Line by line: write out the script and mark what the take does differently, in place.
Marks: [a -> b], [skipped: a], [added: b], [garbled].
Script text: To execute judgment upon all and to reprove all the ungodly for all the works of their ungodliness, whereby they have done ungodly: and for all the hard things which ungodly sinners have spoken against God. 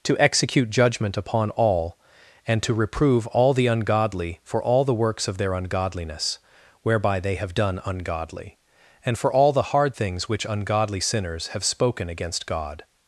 To execute judgment upon all and to reprove all the ungodly for all the works of their ungodliness, whereby they have done ungodly: and for all the hard things which ungodly sinners have spoken against God.